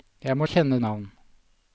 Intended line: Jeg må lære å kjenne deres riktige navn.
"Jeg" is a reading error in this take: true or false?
false